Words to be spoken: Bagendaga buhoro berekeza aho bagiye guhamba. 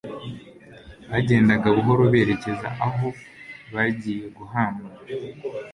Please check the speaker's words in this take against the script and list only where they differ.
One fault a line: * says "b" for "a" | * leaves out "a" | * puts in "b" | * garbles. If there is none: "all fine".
all fine